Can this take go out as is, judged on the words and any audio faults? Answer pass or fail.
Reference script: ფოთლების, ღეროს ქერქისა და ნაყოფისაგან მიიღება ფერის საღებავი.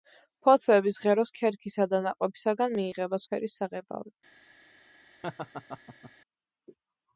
fail